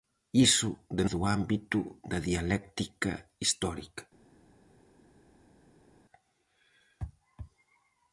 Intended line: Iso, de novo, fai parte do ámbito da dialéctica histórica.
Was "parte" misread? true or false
true